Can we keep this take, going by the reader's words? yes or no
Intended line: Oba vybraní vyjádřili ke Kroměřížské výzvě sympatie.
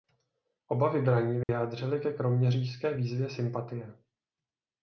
yes